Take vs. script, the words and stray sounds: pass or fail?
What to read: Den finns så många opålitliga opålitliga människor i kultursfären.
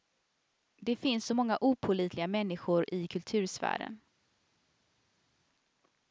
fail